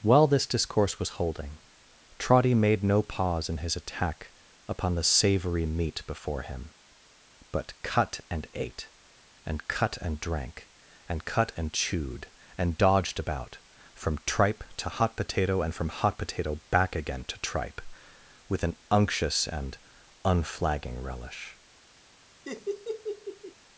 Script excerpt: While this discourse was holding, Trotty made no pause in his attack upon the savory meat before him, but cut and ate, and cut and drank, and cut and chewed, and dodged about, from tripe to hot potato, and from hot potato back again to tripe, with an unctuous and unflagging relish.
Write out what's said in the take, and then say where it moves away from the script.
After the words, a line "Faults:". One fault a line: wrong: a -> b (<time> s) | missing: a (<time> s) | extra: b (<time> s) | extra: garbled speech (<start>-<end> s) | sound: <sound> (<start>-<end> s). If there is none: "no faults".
While this discourse was holding, Trotty made no pause in his attack upon the savory meat before him, but cut and ate, and cut and drank, and cut and chewed, and dodged about, from tripe to hot potato, and from hot potato back again to tripe, with an unctuous and unflagging relish.
Faults:
sound: laugh (22.4-23.5 s)